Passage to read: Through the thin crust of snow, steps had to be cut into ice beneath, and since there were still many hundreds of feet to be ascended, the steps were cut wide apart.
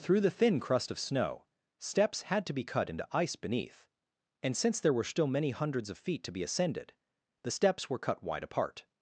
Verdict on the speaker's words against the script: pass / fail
pass